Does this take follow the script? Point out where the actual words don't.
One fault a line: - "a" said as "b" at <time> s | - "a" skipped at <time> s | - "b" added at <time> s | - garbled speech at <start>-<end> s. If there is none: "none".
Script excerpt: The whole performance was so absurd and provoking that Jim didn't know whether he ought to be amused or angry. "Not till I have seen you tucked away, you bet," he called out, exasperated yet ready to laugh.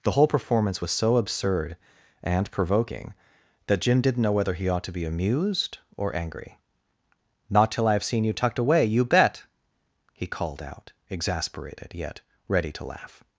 none